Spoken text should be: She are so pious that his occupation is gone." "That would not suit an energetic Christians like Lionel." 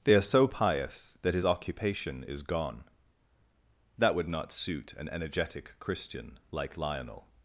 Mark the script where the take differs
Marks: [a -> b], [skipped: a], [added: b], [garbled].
[She -> They] are so pious that his occupation is gone." "That would not suit an energetic [Christians -> Christian] like Lionel."